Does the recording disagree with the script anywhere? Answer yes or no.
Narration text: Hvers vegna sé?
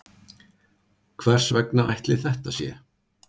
yes